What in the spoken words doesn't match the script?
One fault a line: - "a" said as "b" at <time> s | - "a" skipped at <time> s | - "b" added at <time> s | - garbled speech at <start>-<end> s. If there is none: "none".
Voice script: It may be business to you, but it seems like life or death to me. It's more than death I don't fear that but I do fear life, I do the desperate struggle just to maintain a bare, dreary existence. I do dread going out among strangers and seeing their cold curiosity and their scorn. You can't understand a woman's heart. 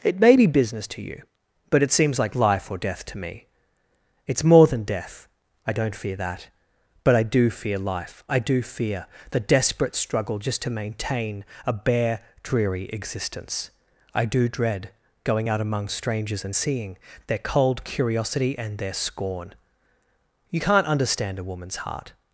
- "fear" added at 8.6 s